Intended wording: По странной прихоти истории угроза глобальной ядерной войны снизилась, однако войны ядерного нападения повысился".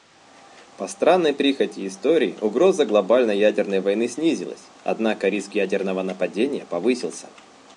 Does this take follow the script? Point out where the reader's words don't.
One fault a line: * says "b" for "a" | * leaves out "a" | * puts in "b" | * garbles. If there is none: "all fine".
* says "риск" for "войны"